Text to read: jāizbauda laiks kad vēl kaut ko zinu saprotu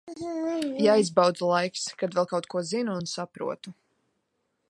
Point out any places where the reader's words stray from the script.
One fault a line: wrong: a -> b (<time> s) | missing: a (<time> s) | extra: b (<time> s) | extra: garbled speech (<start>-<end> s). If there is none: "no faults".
extra: un (3.0 s)